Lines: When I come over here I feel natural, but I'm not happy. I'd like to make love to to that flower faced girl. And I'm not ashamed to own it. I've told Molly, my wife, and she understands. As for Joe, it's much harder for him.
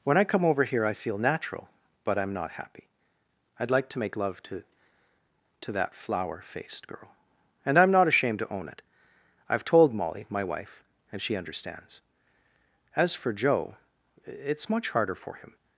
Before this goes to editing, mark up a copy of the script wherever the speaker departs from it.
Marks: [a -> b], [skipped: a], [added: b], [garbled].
When I come over here I feel natural, but I'm not happy. I'd like to make love to to that flower faced girl. And I'm not ashamed to own it. I've told Molly, my wife, and she understands. As for Joe, it's much harder for him.